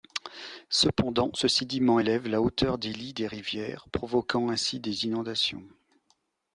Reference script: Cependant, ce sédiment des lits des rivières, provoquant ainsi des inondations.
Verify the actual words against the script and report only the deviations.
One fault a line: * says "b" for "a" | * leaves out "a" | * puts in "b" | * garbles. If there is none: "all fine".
* puts in "élève la hauteur"